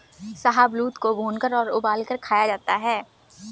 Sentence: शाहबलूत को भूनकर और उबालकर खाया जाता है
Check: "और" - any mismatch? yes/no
no